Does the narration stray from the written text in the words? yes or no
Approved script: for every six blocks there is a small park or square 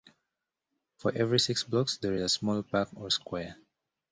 no